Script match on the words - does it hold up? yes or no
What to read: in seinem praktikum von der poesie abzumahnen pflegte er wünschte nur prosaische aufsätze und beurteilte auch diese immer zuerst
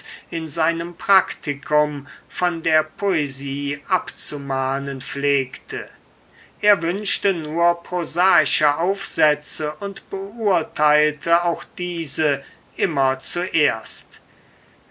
yes